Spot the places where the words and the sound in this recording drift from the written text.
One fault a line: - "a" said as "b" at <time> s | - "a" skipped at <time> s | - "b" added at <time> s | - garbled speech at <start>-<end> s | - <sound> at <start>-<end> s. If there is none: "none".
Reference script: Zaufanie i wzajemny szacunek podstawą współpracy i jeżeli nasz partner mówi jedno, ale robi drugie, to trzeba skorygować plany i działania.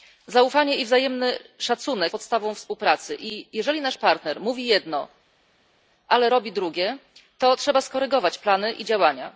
none